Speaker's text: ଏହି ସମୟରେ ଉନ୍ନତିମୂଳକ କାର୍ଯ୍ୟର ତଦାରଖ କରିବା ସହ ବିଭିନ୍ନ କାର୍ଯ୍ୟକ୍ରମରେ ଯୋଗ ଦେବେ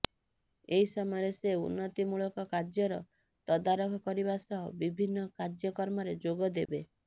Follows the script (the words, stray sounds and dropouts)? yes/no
no